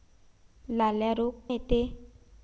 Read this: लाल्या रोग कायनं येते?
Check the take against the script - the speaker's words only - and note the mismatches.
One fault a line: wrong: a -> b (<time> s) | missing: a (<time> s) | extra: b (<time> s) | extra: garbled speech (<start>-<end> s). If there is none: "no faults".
missing: कायनं (1.3 s)